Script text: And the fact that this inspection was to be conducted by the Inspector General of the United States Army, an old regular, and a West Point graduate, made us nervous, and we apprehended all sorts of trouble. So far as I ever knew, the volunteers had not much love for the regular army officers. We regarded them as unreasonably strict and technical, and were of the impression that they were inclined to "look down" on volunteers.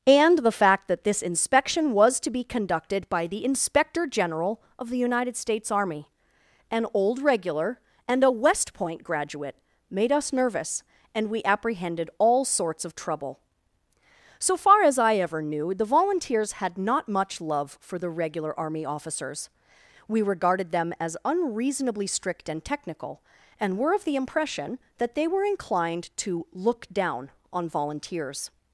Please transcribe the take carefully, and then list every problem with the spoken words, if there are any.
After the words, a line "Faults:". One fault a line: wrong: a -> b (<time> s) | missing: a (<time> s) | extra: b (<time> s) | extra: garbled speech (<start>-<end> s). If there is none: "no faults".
And the fact that this inspection was to be conducted by the Inspector General of the United States Army, an old regular, and a West Point graduate, made us nervous, and we apprehended all sorts of trouble. So far as I ever knew, the volunteers had not much love for the regular army officers. We regarded them as unreasonably strict and technical, and were of the impression that they were inclined to "look down" on volunteers.
Faults:
no faults